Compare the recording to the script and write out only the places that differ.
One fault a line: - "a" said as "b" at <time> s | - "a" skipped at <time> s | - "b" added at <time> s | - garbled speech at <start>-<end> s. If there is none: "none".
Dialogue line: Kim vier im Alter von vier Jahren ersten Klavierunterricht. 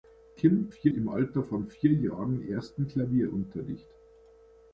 none